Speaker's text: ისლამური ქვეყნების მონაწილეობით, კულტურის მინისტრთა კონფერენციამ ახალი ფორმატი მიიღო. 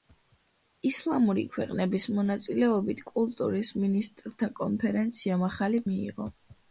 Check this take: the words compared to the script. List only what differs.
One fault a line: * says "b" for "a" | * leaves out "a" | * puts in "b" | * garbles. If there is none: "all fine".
* leaves out "ფორმატი"